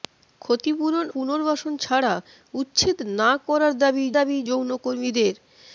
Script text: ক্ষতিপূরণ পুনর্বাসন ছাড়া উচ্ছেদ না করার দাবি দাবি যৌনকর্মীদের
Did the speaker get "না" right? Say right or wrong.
right